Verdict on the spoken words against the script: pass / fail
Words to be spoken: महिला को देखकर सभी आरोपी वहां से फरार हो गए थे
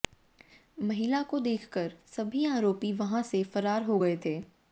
pass